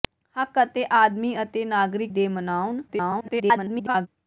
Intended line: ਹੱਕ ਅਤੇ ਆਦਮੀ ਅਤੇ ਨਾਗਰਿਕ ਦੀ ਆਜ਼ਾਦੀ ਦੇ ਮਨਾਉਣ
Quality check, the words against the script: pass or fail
fail